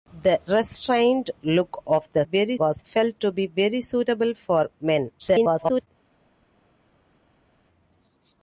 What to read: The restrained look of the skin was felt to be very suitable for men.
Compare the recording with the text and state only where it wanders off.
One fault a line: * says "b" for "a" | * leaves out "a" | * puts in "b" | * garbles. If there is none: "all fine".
* says "very" for "skin"
* garbles